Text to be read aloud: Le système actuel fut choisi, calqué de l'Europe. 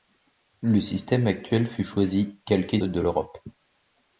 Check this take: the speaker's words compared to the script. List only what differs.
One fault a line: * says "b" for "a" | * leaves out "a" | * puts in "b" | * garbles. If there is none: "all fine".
all fine